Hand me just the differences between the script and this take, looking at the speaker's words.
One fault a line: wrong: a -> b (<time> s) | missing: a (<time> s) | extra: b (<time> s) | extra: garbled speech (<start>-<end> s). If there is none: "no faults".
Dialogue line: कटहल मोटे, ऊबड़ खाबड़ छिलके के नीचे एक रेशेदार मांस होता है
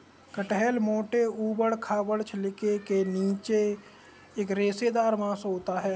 no faults